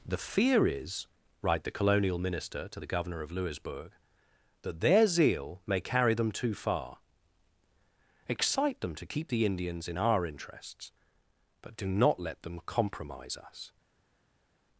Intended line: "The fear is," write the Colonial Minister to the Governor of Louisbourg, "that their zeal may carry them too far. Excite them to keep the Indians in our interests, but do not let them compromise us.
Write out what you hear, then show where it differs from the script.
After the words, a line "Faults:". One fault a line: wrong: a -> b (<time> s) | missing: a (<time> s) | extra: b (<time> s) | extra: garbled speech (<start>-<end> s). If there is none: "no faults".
"The fear is," write the Colonial Minister to the Governor of Louisbourg, "that their zeal may carry them too far. Excite them to keep the Indians in our interests, but do not let them compromise us.
Faults:
no faults